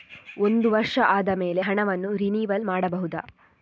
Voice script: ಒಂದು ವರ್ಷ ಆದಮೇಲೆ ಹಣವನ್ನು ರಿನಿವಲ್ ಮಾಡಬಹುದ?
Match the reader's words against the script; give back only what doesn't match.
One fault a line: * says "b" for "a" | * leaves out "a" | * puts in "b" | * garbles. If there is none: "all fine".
all fine